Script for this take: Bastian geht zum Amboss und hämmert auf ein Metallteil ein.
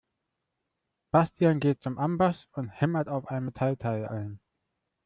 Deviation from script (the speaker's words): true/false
false